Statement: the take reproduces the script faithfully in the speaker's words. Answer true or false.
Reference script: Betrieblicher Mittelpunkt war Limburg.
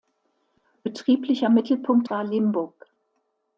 true